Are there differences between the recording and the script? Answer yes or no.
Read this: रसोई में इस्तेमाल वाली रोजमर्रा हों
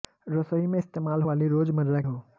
no